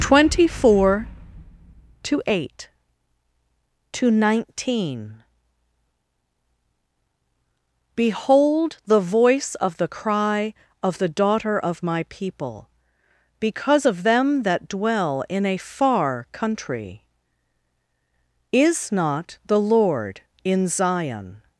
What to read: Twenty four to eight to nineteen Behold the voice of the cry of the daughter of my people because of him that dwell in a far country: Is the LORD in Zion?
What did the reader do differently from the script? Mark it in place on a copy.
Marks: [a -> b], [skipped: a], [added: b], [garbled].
Twenty four to eight to nineteen Behold the voice of the cry of the daughter of my people because of [him -> them] that dwell in a far country: Is [added: not] the LORD in Zion?